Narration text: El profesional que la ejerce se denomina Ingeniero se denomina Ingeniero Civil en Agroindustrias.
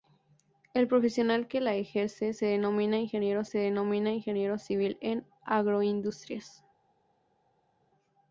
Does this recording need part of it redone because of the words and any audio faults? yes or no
no